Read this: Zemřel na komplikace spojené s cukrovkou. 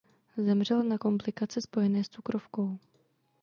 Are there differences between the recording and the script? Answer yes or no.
no